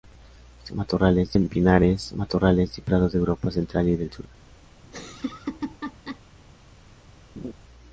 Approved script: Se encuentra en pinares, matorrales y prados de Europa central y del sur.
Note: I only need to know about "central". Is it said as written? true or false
true